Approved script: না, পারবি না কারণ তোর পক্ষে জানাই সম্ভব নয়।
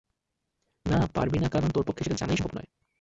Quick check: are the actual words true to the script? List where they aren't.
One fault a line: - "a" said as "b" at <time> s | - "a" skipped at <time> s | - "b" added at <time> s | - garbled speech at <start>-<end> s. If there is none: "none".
- "সেটা" added at 2.0 s